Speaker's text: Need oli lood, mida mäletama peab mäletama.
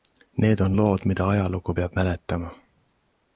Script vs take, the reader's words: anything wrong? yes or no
yes